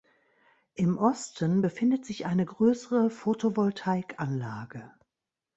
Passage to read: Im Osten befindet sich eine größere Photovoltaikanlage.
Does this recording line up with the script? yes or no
yes